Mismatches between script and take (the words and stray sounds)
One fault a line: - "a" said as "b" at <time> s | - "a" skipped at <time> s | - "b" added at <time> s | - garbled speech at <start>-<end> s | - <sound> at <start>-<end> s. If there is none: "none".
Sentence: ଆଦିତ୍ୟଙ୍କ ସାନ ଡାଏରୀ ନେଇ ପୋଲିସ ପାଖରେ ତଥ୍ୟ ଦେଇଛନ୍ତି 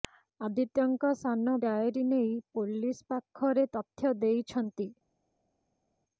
none